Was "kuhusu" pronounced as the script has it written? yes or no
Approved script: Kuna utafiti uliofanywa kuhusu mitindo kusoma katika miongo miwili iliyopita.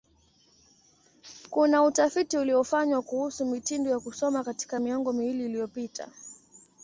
yes